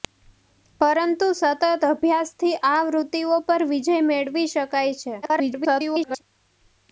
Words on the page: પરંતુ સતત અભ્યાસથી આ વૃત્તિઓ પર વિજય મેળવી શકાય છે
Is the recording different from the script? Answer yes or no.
yes